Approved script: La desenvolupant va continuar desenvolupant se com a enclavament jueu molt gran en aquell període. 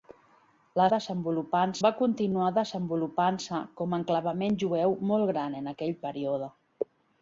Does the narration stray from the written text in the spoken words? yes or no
no